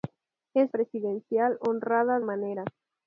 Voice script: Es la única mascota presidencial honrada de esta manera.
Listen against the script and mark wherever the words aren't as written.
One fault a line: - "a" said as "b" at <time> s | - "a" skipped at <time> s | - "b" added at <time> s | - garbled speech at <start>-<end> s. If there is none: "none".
- "la única mascota" skipped at 0.7 s
- "de esta" skipped at 2.2 s